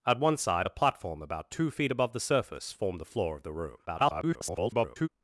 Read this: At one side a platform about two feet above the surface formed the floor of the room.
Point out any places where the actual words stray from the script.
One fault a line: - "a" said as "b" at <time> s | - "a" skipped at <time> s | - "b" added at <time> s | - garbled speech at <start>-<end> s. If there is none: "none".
- garbled speech at 3.9-5.1 s